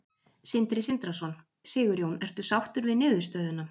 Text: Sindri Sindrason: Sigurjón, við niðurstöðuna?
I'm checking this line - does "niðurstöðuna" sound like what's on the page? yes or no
yes